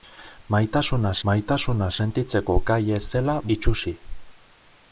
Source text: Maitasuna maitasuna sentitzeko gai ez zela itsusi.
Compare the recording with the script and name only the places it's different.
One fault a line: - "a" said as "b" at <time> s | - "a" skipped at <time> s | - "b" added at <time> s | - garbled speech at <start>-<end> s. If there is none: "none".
none